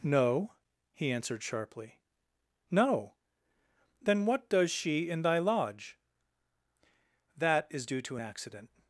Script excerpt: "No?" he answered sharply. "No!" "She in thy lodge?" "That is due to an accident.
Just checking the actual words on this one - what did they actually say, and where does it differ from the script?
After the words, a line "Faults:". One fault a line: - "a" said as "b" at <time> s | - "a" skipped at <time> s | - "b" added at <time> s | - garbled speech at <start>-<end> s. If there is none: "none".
"No?" he answered sharply. "No!" "Then what does she in thy lodge?" "That is due to an accident.
Faults:
- "Then what does" added at 4.0 s